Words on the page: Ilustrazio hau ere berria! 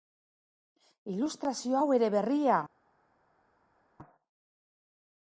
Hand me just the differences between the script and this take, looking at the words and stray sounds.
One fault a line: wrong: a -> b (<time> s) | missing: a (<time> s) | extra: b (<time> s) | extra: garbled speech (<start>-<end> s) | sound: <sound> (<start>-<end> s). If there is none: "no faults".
no faults